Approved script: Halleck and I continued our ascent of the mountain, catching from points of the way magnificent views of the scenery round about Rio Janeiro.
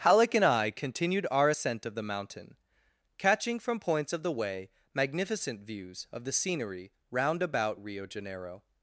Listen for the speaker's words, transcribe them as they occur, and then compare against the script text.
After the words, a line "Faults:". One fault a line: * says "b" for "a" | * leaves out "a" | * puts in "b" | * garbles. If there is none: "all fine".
Halleck and I continued our ascent of the mountain, catching from points of the way magnificent views of the scenery round about Rio Janeiro.
Faults:
all fine